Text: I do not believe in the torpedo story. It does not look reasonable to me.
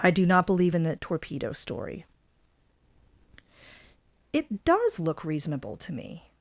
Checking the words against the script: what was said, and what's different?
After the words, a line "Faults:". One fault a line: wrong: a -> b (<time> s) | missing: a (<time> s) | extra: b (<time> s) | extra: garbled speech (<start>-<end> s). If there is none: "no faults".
I do not believe in the torpedo story. It does look reasonable to me.
Faults:
missing: not (5.0 s)